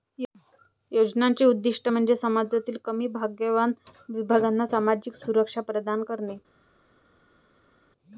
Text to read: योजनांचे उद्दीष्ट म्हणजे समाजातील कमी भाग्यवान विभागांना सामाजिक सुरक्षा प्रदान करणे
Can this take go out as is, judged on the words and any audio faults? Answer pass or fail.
pass